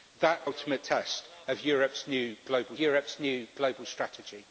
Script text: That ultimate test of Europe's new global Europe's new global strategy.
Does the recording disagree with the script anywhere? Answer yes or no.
no